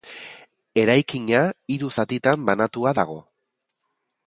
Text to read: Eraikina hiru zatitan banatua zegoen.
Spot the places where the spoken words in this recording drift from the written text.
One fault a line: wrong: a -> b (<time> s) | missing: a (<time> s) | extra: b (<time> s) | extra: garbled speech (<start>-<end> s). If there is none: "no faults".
wrong: zegoen -> dago (3.0 s)